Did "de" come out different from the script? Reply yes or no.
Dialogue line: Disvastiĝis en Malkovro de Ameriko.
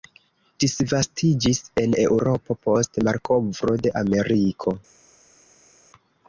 no